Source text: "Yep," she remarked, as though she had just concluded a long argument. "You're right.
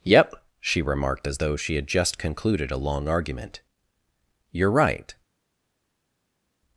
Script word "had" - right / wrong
right